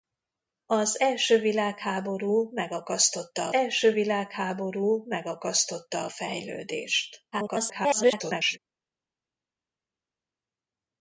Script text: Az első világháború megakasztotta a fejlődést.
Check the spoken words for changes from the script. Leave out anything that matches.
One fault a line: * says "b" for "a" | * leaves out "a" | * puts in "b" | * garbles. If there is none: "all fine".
* puts in "első világháború megakasztotta"
* garbles